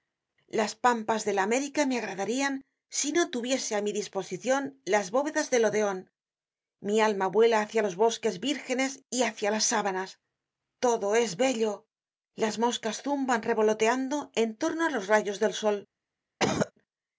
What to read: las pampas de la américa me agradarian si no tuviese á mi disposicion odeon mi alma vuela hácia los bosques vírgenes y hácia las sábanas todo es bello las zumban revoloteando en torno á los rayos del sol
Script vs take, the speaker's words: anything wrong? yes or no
yes